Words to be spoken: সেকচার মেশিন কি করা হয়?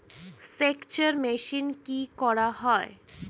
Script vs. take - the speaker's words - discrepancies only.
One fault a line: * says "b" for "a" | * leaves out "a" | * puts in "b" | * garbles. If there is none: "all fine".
all fine